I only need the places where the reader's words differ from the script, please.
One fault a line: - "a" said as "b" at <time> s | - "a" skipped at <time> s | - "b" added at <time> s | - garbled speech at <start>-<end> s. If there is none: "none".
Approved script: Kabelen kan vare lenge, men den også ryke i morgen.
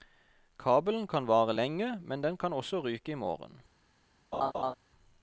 - "kan" added at 2.4 s